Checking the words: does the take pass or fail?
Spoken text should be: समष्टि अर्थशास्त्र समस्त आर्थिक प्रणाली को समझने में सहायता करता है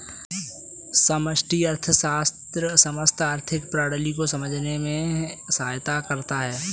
pass